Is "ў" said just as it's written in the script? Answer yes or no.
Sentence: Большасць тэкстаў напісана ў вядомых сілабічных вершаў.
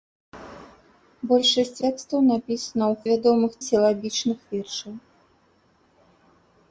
yes